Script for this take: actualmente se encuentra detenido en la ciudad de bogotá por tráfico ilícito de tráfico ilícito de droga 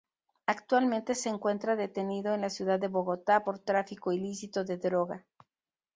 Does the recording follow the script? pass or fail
fail